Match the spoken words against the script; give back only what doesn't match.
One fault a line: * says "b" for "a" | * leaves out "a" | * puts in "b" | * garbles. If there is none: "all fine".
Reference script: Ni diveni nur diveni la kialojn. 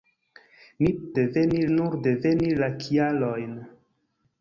all fine